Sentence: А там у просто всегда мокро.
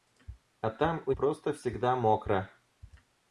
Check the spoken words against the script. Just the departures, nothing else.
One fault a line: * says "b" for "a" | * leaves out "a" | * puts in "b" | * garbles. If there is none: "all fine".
all fine